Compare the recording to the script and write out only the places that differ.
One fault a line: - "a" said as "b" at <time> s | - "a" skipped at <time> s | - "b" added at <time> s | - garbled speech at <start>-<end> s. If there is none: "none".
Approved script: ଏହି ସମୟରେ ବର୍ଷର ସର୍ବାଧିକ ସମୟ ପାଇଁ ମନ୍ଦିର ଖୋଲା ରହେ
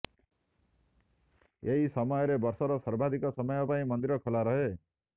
none